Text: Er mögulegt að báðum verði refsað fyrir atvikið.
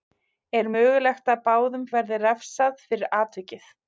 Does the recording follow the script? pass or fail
pass